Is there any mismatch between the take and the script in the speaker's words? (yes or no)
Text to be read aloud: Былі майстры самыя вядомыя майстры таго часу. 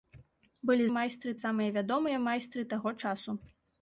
no